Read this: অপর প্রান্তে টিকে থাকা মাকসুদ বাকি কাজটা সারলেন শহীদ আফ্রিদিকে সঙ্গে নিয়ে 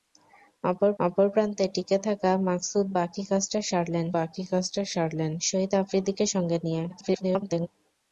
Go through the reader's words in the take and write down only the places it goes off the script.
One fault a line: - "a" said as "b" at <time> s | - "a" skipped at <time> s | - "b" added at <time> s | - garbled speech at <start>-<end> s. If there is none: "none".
- "অপর" added at 1.0 s
- "বাকি কাজটা সারলেন" added at 4.2 s
- garbled speech at 6.9-7.7 s